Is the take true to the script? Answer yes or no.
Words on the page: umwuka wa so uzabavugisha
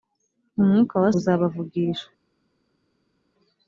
no